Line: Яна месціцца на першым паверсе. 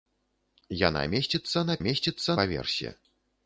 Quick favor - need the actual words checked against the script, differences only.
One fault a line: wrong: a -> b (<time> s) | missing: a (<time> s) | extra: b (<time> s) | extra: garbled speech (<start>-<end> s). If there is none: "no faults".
wrong: першым -> месціцца (1.9 s)